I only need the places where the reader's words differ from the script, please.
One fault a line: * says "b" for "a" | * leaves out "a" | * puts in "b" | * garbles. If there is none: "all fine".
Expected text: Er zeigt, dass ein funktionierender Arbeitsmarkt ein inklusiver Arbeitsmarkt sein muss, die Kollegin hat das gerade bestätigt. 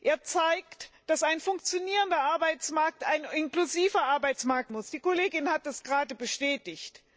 * leaves out "sein"